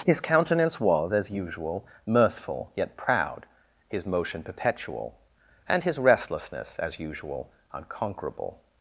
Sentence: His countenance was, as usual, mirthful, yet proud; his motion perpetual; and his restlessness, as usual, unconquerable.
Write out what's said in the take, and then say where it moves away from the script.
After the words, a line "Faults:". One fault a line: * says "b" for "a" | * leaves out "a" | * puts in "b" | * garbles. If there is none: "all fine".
His countenance was, as usual, mirthful, yet proud; his motion perpetual; and his restlessness, as usual, unconquerable.
Faults:
all fine